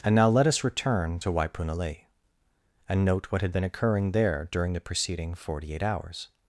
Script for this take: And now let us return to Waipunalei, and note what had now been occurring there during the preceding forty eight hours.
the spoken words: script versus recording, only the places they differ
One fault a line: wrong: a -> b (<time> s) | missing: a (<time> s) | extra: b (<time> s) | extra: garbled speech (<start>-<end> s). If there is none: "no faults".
missing: now (3.5 s)